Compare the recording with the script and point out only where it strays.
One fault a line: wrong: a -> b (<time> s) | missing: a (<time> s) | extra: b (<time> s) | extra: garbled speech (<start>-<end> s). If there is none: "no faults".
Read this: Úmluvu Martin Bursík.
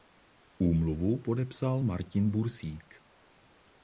extra: podepsal (1.2 s)